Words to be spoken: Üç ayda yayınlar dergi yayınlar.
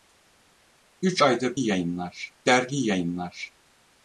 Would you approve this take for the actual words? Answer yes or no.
yes